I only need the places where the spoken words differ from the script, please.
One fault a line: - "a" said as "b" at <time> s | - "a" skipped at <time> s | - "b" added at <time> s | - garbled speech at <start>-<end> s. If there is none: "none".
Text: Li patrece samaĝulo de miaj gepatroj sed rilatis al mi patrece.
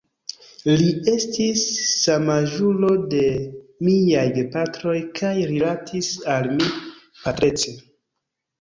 - "patrece" said as "estis" at 1.1 s
- "sed" said as "kaj" at 5.2 s